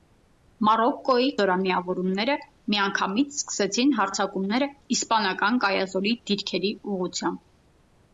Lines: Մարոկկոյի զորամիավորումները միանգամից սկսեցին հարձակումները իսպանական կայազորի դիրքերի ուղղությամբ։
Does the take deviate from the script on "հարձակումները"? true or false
false